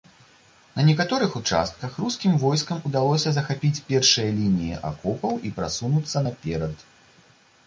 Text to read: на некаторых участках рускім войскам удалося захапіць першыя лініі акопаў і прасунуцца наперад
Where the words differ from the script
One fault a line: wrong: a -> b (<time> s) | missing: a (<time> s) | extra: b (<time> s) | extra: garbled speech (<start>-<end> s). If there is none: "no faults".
no faults